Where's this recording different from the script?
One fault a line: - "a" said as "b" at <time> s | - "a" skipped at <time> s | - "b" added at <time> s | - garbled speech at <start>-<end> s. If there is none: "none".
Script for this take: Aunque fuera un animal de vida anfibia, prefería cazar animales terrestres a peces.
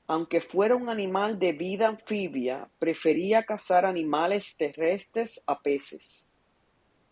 none